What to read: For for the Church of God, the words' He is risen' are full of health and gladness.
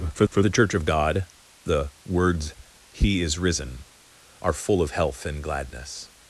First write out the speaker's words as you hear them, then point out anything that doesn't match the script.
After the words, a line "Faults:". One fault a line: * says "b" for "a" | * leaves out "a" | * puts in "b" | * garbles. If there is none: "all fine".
For for the Church of God, the words' He is risen' are full of health and gladness.
Faults:
all fine